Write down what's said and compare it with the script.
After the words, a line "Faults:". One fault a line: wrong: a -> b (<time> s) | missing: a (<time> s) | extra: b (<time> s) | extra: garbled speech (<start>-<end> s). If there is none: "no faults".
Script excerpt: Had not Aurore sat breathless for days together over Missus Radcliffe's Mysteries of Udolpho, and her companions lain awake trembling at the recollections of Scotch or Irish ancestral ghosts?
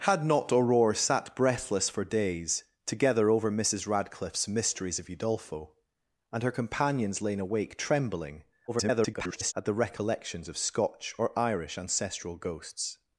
Had not Aurore sat breathless for days together over Missus Radcliffe's Mysteries of Udolpho, and her companions lain awake trembling [garbled] at the recollections of Scotch or Irish ancestral ghosts?
Faults:
extra: garbled speech (8.7-9.5 s)